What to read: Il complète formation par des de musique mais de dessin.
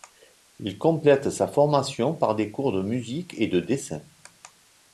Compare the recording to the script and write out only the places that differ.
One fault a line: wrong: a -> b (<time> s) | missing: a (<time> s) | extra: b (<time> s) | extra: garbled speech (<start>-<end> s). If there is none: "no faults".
extra: sa (1.3 s)
extra: cours (2.5 s)
wrong: mais -> et (3.4 s)